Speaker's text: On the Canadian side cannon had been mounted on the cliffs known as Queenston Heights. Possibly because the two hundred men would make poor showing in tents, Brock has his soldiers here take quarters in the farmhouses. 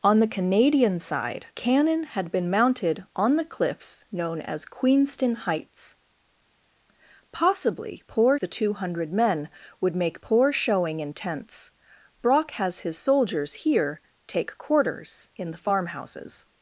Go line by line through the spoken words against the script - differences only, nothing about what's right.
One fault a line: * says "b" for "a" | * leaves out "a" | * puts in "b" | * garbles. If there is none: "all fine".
* says "poor" for "because"